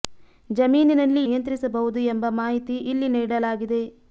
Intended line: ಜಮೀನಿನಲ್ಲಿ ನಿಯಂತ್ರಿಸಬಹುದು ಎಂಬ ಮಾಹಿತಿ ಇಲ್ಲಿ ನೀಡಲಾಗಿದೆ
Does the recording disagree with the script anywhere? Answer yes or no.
no